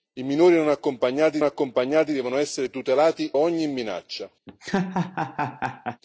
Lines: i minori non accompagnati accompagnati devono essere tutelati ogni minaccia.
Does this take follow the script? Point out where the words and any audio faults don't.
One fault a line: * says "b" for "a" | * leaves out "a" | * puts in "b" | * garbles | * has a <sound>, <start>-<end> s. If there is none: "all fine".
* has a laugh, 4.5-6.0 s